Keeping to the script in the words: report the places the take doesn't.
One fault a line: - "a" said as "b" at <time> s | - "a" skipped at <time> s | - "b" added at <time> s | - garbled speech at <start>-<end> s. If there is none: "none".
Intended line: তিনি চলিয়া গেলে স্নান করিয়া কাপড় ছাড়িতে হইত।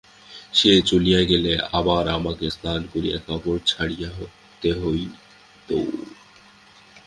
- "তিনি" said as "সে" at 0.5 s
- "আবার আমাকে" added at 1.7 s